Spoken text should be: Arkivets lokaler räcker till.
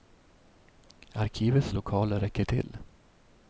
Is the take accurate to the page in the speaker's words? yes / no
yes